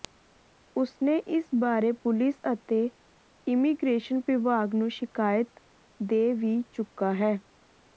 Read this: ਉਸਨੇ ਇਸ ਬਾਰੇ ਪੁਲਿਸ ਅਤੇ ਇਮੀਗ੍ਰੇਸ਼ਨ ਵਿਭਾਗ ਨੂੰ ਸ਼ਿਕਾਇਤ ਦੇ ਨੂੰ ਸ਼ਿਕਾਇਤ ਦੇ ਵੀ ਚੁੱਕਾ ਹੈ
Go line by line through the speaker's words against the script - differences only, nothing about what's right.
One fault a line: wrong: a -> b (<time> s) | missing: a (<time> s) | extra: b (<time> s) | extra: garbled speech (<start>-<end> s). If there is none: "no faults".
missing: ਨੂੰ ਸ਼ਿਕਾਇਤ ਦੇ (6.3 s)